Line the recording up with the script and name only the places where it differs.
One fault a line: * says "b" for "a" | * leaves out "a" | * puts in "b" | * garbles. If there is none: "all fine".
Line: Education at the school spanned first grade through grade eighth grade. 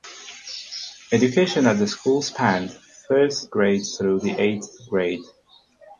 * says "the" for "grade"